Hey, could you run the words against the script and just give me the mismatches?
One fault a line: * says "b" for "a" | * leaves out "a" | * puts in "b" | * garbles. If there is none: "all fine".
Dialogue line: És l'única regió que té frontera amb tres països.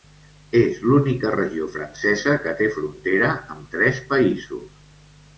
* puts in "francesa"